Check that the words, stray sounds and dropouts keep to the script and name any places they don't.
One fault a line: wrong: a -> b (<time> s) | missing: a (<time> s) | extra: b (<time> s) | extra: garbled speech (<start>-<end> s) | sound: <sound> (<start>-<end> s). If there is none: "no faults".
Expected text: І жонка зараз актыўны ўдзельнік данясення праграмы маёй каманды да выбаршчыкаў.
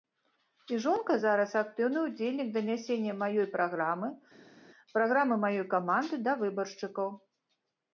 extra: маёй праграмы (3.2 s)